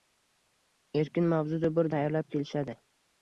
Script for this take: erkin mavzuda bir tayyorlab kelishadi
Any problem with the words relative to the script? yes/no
no